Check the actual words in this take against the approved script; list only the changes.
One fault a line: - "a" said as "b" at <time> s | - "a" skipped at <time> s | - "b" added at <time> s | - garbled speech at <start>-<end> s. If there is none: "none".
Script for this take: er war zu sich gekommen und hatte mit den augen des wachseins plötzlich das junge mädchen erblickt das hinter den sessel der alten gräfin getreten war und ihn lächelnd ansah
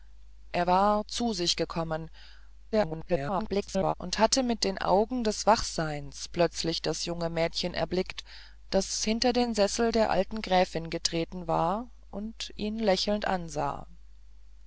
- garbled speech at 2.7-3.9 s